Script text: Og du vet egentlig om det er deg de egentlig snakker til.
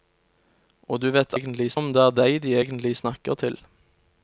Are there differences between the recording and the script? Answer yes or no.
no